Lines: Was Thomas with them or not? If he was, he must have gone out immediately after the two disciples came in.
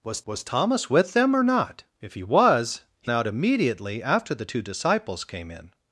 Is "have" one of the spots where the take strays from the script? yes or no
yes